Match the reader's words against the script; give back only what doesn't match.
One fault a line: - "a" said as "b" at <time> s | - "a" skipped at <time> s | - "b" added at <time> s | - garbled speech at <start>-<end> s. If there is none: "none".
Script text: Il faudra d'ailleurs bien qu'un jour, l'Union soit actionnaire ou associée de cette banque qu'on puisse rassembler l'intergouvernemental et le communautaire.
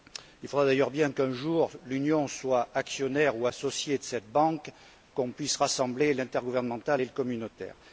none